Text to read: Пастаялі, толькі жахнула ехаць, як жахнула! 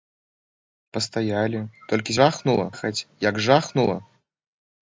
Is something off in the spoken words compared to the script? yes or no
no